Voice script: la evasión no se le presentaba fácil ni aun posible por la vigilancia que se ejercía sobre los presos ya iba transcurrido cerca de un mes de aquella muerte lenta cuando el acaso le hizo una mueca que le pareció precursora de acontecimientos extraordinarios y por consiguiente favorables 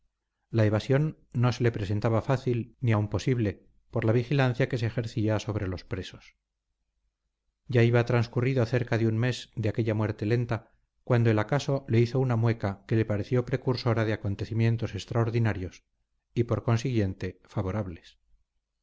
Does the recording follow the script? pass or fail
pass